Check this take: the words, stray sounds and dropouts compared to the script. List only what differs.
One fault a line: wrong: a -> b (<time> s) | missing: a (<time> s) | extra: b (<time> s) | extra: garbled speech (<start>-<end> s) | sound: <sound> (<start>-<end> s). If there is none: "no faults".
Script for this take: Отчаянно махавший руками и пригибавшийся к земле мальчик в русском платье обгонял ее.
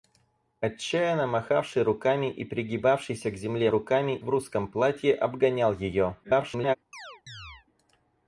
wrong: мальчик -> руками (3.7 s)
extra: garbled speech (6.2-6.8 s)
sound: chirp (6.9-7.7 s)